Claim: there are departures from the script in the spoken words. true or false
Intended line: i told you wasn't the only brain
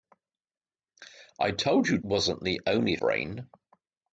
false